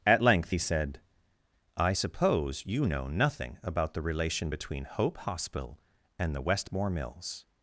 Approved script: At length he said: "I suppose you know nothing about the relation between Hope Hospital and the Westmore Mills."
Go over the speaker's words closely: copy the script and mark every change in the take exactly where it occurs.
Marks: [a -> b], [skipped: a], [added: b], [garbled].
At length he said: "I suppose you know nothing about the relation between Hope Hospital and the Westmore Mills."